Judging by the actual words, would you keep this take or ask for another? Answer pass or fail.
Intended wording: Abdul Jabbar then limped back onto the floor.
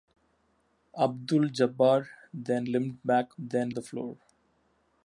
fail